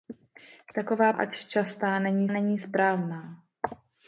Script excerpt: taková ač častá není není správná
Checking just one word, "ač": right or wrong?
right